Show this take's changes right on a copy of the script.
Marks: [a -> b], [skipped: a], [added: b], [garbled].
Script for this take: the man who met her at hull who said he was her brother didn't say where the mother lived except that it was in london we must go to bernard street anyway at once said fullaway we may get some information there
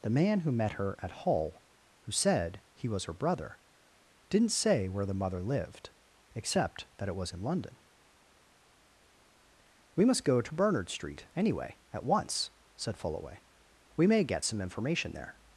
the man who met her at hull who said he was her brother didn't say where the mother lived except that it was in london we must go to bernard street anyway at once said fullaway we may get some information there